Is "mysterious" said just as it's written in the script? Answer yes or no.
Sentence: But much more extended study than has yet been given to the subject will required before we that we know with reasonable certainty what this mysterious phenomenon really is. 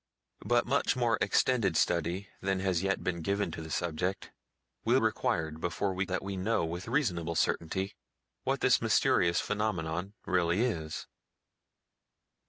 yes